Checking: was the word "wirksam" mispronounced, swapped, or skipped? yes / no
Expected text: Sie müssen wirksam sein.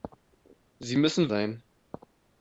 yes